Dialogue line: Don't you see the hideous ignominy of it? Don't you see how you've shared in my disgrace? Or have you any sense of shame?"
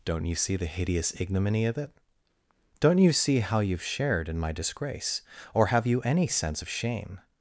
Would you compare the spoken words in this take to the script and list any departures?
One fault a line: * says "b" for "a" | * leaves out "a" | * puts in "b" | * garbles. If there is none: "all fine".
all fine